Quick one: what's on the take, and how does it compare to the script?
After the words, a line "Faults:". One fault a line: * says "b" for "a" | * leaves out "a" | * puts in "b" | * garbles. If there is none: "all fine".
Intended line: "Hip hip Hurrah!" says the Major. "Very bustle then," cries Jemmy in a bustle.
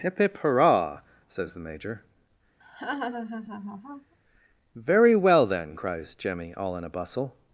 "Hip hip Hurrah!" says the Major. "Very well then," cries Jemmy all in a bustle.
Faults:
* says "well" for "bustle"
* puts in "all"